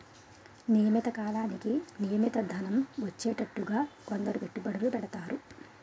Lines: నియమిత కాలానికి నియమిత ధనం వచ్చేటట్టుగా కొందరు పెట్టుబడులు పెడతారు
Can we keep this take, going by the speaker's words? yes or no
yes